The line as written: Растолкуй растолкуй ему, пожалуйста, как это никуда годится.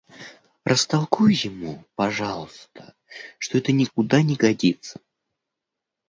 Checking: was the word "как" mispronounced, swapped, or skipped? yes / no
yes